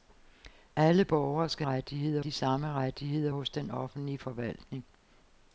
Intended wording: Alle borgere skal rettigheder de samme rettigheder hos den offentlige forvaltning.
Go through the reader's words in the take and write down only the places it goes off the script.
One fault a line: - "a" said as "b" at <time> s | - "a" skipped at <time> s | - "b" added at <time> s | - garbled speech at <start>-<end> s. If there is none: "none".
none